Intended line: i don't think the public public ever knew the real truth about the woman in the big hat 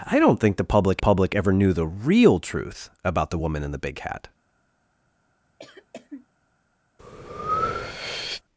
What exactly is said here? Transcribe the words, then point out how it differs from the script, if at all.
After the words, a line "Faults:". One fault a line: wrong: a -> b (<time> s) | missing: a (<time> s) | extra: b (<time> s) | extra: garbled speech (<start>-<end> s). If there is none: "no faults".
i don't think the public public ever knew the real truth about the woman in the big hat
Faults:
no faults